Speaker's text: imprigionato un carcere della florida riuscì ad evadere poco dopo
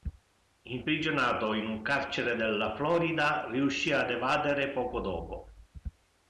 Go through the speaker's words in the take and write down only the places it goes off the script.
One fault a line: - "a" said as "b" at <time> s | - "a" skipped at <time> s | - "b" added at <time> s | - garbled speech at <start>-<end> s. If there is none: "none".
- "in" added at 1.5 s